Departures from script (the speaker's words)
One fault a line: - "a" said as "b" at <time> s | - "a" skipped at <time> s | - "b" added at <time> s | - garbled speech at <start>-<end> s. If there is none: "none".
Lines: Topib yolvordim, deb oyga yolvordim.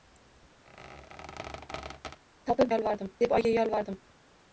none